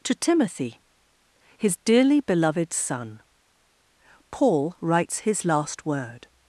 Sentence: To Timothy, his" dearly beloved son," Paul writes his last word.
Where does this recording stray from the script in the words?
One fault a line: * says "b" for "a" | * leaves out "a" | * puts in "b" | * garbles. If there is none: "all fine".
all fine